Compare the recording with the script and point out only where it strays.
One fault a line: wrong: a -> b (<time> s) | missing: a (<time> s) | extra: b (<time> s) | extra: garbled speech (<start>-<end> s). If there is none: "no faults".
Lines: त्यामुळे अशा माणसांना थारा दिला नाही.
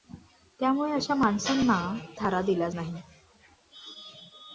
no faults